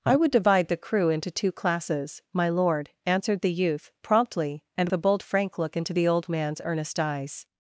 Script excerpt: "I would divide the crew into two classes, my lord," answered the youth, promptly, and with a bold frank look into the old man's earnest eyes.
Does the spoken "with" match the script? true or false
false